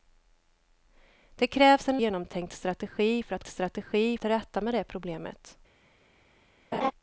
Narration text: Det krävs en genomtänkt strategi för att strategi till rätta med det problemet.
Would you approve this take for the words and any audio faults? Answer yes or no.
no